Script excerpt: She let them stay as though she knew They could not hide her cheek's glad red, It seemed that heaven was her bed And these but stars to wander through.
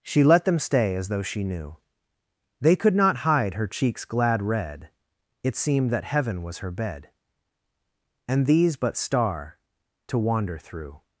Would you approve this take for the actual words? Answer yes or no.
no